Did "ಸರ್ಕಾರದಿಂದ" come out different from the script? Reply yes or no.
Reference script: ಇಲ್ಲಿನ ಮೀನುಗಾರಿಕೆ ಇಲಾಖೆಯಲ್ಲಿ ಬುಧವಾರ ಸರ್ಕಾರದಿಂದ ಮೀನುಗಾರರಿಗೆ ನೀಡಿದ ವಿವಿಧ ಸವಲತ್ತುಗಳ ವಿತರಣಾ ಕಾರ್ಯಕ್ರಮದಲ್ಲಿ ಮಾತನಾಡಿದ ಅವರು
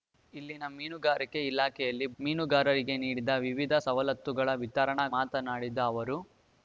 yes